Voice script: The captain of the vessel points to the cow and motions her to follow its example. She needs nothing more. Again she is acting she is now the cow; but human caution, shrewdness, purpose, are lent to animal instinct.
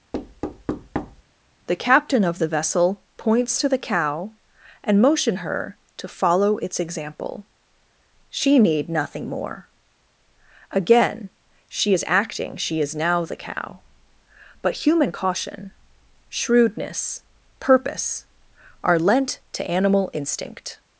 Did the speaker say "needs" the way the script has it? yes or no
no